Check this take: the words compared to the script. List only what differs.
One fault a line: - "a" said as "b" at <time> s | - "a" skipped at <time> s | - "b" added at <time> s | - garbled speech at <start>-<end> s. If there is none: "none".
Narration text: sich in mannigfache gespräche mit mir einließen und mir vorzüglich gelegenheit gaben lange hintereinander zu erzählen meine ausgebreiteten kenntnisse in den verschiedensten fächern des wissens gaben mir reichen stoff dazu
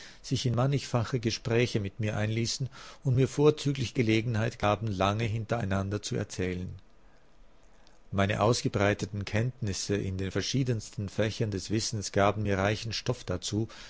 none